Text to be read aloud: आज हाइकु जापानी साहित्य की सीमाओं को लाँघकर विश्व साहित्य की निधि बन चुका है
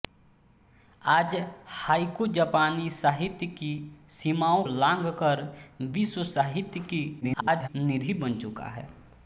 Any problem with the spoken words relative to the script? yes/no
yes